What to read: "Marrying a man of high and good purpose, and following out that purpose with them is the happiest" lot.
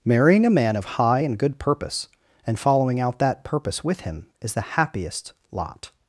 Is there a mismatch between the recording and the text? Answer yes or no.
yes